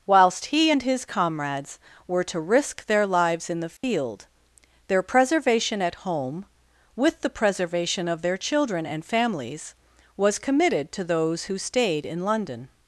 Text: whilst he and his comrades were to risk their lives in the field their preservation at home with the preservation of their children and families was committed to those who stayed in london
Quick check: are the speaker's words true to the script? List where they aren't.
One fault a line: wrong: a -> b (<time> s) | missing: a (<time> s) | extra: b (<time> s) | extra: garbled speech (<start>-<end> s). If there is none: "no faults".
no faults